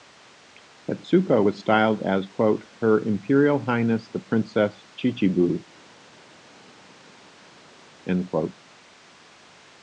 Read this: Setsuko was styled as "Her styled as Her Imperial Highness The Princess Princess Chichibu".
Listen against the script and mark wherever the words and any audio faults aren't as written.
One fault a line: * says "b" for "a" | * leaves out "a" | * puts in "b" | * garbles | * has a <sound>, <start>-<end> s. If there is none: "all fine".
* leaves out "styled as Her"
* leaves out "Princess"